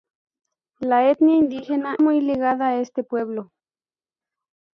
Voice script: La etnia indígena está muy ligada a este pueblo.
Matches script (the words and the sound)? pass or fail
fail